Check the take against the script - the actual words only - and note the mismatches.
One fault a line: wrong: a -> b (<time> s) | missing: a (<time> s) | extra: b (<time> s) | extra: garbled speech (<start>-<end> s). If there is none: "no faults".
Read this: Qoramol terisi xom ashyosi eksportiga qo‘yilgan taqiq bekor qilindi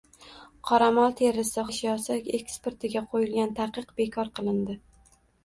missing: xom (1.7 s)